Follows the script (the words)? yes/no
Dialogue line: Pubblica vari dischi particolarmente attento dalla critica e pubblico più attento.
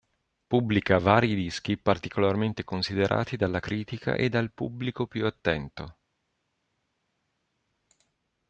no